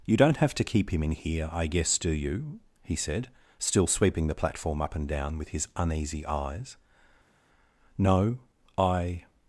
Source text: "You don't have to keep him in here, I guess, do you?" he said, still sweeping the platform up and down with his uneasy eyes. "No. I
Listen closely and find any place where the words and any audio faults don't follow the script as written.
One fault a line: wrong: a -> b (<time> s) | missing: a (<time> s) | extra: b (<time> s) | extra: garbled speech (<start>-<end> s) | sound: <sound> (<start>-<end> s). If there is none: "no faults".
no faults